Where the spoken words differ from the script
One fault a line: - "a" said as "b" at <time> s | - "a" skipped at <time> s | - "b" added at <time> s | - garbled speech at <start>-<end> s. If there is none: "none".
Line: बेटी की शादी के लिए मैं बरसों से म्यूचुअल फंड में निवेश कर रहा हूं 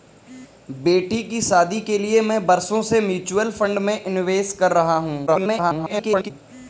- garbled speech at 5.3-6.3 s